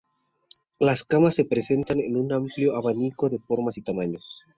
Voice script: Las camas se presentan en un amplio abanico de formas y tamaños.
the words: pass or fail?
pass